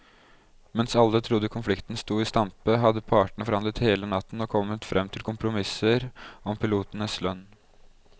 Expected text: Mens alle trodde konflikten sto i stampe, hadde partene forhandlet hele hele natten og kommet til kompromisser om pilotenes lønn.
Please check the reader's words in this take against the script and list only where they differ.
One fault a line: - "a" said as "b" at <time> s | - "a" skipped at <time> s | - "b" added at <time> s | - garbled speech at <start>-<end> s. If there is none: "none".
- "hele" skipped at 4.1 s
- "frem" added at 4.9 s